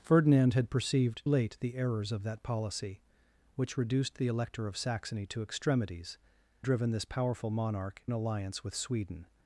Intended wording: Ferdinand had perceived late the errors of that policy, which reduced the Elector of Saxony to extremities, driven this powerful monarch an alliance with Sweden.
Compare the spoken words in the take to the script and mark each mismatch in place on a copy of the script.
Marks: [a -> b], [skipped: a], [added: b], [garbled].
Ferdinand had perceived late the errors of that policy, which reduced the Elector of Saxony to extremities, driven this powerful monarch an alliance with Sweden.